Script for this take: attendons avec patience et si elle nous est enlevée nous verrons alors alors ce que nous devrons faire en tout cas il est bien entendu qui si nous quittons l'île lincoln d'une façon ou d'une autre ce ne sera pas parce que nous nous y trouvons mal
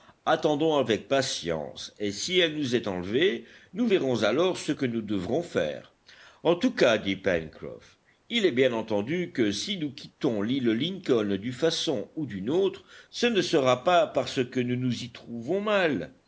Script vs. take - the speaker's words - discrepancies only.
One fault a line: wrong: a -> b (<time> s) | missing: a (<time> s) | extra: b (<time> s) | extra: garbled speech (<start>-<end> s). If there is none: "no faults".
missing: alors (4.6 s)
extra: dit pencroff (7.0 s)
wrong: qui -> que (9.3 s)